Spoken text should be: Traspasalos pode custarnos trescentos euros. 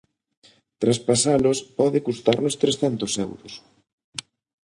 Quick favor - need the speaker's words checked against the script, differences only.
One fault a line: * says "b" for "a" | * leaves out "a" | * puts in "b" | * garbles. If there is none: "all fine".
all fine